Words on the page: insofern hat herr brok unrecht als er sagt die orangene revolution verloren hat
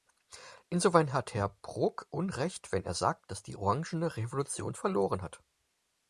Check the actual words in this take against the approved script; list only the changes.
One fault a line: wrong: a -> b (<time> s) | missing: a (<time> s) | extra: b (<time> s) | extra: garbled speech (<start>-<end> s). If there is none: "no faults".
wrong: als -> wenn (2.7 s)
extra: dass (3.3 s)